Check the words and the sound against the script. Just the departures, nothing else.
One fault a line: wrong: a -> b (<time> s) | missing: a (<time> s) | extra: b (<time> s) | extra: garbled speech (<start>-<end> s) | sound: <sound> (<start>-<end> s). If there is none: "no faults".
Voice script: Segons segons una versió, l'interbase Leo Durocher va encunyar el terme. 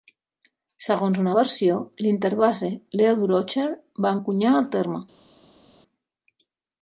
missing: segons (1.2 s)